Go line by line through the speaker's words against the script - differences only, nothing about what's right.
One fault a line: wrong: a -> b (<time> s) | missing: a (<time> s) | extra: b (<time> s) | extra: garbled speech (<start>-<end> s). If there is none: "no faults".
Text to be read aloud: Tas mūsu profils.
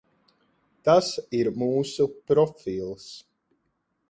extra: ir (1.4 s)